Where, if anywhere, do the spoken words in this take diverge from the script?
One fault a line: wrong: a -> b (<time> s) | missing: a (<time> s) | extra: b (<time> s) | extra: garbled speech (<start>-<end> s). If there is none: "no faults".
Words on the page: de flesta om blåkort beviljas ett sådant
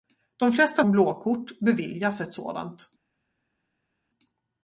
no faults